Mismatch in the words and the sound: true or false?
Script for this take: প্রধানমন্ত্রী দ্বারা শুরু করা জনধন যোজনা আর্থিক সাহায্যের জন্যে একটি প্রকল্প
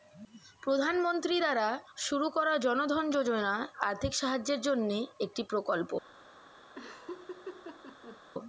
true